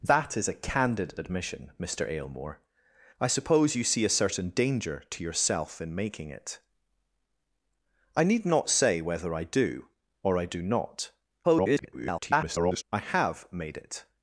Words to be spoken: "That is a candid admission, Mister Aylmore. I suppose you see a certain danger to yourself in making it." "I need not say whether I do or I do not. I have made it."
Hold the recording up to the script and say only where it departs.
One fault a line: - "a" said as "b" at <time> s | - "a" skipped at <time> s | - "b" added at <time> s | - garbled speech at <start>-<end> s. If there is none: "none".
- garbled speech at 11.4-12.8 s